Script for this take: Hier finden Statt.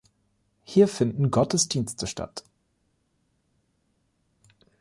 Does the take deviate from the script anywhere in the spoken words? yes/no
yes